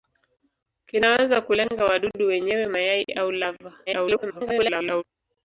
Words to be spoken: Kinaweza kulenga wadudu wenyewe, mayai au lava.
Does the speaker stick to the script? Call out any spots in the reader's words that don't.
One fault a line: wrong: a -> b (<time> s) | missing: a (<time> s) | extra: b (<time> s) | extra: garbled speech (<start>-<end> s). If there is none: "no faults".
extra: garbled speech (3.9-5.0 s)